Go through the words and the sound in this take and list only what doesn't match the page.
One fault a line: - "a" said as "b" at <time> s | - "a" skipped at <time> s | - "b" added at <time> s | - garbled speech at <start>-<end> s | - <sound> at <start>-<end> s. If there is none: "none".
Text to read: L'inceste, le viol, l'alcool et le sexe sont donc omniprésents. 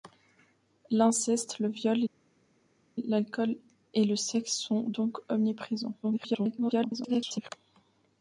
- garbled speech at 6.0-7.5 s